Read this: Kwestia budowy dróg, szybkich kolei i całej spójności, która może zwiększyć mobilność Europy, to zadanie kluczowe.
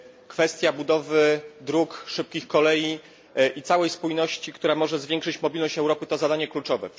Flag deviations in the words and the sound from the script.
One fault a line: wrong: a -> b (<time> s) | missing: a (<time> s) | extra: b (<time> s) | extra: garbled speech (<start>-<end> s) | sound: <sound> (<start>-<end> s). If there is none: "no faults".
no faults